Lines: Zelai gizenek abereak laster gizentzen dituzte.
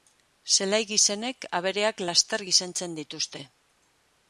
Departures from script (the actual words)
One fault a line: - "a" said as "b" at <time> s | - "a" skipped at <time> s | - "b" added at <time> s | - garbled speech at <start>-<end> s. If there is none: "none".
none